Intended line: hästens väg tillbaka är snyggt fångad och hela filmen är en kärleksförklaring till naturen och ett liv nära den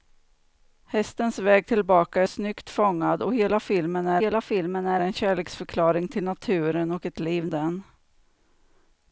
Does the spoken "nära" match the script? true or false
false